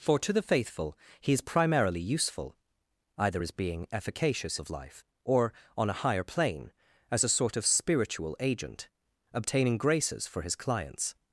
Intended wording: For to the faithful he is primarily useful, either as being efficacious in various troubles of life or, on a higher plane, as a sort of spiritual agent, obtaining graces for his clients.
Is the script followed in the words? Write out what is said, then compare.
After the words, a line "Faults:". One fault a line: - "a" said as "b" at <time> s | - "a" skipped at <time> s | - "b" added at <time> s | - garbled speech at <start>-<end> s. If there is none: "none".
For to the faithful he is primarily useful, either as being efficacious of life or, on a higher plane, as a sort of spiritual agent, obtaining graces for his clients.
Faults:
- "in various troubles" skipped at 4.6 s